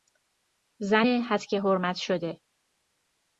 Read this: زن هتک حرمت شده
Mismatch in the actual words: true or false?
false